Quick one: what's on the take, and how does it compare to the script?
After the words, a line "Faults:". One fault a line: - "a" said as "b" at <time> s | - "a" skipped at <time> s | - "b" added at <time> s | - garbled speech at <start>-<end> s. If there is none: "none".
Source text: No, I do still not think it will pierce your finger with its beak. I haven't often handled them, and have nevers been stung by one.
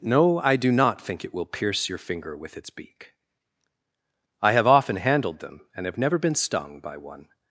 No, I do not think it will pierce your finger with its beak. I have often handled them, and have never been stung by one.
Faults:
- "still" skipped at 0.7 s
- "haven't" said as "have" at 4.5 s
- "nevers" said as "never" at 6.0 s